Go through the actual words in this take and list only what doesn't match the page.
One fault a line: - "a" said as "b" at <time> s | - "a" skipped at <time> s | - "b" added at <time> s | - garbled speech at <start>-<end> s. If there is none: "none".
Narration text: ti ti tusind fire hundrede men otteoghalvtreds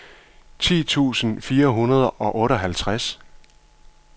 - "ti" skipped at 0.8 s
- "men" said as "og" at 2.1 s